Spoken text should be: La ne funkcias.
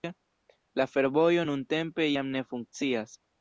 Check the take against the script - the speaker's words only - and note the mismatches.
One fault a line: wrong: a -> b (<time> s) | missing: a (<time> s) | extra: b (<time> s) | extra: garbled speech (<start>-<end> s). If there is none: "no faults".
extra: fervojo nuntempe jam (0.9 s)